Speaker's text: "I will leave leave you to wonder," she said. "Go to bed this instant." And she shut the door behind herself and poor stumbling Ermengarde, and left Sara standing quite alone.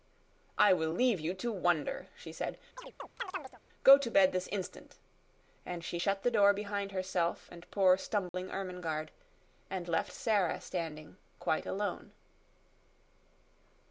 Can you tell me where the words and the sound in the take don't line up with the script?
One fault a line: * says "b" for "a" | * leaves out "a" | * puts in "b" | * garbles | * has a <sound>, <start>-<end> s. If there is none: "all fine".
* leaves out "leave"
* has a chirp, 2.8-3.6 s
* has a dropout, 8.3-8.3 s